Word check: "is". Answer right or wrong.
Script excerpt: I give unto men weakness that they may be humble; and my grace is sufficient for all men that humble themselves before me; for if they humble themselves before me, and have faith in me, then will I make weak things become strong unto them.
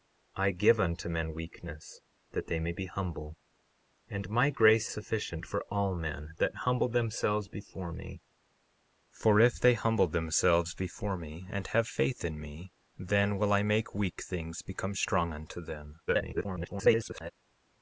wrong